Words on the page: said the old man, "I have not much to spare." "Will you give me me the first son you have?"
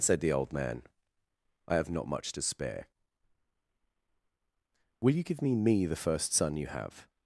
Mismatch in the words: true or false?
false